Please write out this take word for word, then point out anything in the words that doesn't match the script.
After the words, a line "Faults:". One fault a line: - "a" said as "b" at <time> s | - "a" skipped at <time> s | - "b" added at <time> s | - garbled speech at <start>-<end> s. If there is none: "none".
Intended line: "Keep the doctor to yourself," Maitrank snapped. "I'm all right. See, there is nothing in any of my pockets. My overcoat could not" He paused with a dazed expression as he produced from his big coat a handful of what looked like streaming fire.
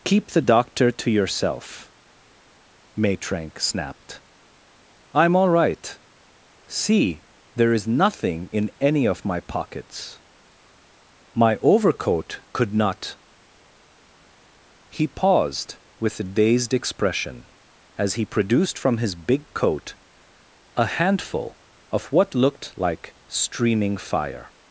"Keep the doctor to yourself," Maitrank snapped. "I'm all right. See, there is nothing in any of my pockets. My overcoat could not" He paused with a dazed expression as he produced from his big coat a handful of what looked like streaming fire.
Faults:
none